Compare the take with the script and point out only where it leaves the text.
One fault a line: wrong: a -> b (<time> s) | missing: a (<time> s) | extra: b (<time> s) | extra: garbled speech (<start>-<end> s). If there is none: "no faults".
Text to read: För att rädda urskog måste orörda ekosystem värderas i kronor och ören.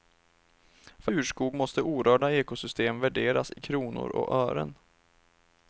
missing: att rädda (1.1 s)